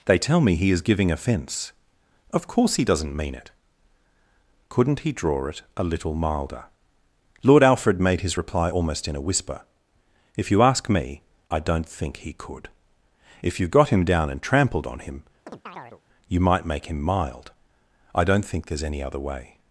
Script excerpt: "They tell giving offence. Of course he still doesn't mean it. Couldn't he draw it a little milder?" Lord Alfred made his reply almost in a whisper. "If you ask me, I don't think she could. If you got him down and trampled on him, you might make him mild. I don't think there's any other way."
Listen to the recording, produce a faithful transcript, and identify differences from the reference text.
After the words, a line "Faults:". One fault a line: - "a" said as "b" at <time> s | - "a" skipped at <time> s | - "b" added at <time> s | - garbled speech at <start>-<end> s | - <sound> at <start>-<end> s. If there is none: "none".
"They tell me he is giving offence. Of course he doesn't mean it. Couldn't he draw it a little milder?" Lord Alfred made his reply almost in a whisper. "If you ask me, I don't think he could. If you got him down and trampled on him, you might make him mild. I don't think there's any other way."
Faults:
- "me he is" added at 0.4 s
- "still" skipped at 2.9 s
- "she" said as "he" at 12.2 s
- chirp at 15.5-16.0 s